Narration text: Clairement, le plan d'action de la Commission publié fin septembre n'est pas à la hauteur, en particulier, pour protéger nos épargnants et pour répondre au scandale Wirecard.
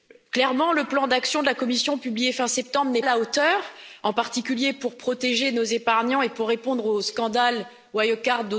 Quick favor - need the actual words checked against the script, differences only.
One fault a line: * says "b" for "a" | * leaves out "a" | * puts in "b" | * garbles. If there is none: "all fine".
* leaves out "pas"